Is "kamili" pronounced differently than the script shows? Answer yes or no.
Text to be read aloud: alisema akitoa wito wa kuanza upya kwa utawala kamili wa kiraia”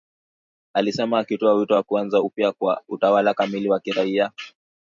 no